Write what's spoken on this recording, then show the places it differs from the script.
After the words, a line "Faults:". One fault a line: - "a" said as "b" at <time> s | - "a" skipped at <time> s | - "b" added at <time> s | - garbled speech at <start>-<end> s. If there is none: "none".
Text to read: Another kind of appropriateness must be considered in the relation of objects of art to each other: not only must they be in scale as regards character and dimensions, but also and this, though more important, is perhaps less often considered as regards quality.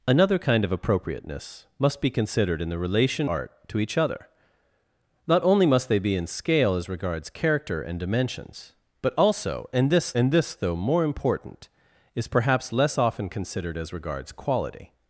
Another kind of appropriateness must be considered in the relation art to each other: not only must they be in scale as regards character and dimensions, but also and this and this, though more important, is perhaps less often considered as regards quality.
Faults:
- "of objects of" skipped at 3.3 s
- "and this" added at 10.1 s